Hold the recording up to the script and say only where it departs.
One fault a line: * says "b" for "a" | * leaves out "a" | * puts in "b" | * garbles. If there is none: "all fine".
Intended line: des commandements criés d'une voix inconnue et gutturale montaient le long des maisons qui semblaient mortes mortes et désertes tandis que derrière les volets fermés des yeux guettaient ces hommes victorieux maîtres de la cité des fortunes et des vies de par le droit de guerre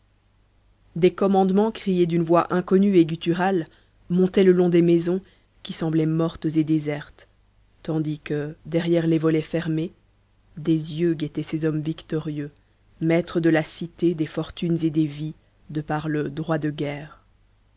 * leaves out "mortes"